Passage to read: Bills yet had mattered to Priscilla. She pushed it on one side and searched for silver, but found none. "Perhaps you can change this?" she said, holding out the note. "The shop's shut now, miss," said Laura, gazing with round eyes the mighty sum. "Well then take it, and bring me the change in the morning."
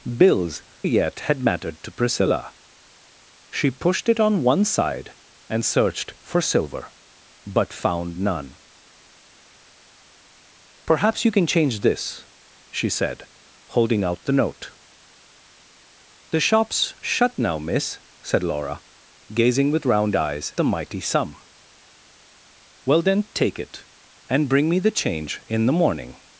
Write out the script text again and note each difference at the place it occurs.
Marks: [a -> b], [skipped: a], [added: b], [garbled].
Bills yet had mattered to Priscilla. She pushed it on one side and searched for silver, but found none. "Perhaps you can change this?" she said, holding out the note. "The shop's shut now, miss," said Laura, gazing with round eyes the mighty sum. "Well then take it, and bring me the change in the morning."